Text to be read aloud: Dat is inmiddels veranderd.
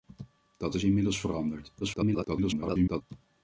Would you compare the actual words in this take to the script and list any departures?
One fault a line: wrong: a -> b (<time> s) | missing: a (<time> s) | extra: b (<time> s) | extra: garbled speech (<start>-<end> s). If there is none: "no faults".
extra: garbled speech (1.8-3.0 s)